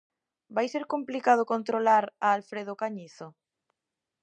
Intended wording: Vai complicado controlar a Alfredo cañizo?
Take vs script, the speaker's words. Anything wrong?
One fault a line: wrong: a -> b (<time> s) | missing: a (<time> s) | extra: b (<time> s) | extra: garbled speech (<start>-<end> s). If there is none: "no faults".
extra: ser (0.7 s)